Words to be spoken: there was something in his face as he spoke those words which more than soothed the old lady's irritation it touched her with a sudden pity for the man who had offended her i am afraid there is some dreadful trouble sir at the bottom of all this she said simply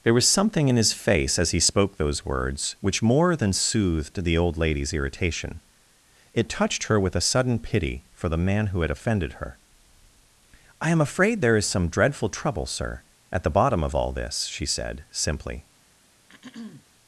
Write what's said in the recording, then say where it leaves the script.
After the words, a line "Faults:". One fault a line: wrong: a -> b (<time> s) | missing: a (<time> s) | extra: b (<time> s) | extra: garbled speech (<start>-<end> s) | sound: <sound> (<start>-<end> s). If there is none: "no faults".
there was something in his face as he spoke those words which more than soothed the old lady's irritation it touched her with a sudden pity for the man who had offended her i am afraid there is some dreadful trouble sir at the bottom of all this she said simply
Faults:
sound: throat clearing (16.3-16.9 s)